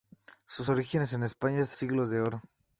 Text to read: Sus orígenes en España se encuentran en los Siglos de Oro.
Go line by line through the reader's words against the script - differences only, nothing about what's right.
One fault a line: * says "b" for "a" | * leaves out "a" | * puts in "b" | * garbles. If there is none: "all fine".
* leaves out "encuentran en los"